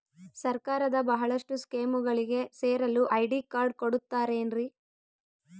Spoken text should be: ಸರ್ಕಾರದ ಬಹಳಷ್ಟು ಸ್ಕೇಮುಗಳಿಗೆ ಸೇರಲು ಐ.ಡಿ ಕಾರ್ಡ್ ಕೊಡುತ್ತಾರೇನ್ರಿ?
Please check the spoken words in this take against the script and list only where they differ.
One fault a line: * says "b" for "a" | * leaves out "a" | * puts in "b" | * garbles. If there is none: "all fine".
all fine